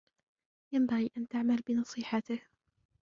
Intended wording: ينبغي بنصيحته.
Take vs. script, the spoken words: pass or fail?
fail